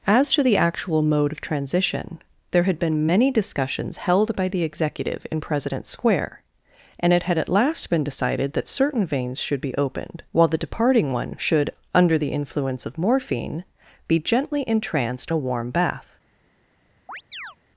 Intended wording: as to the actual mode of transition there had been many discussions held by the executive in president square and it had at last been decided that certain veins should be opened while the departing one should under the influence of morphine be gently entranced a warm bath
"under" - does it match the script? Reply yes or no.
yes